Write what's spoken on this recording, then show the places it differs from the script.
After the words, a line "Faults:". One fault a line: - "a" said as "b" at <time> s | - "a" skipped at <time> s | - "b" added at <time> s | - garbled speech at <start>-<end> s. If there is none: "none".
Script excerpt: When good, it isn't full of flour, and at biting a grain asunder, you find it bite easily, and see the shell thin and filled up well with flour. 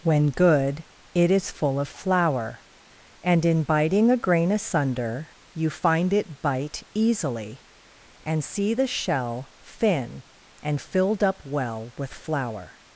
When good, it is full of flour, and in biting a grain asunder, you find it bite easily, and see the shell thin and filled up well with flour.
Faults:
- "isn't" said as "is" at 1.3 s
- "at" said as "in" at 3.5 s